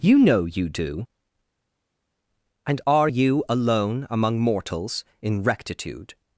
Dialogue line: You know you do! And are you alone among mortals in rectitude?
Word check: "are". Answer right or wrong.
right